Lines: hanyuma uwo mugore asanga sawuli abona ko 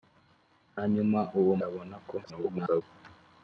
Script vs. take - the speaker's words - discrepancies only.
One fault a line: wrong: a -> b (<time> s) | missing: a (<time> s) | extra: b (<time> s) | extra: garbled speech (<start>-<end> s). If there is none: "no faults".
missing: mugore asanga sawuli (1.5 s)
extra: garbled speech (2.2-2.8 s)